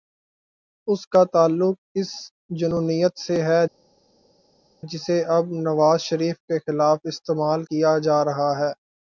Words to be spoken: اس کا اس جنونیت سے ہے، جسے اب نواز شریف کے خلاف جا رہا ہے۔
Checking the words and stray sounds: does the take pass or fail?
fail